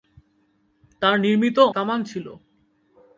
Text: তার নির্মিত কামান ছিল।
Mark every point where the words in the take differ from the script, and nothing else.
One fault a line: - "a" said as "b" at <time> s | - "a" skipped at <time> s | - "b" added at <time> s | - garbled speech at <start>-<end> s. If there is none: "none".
none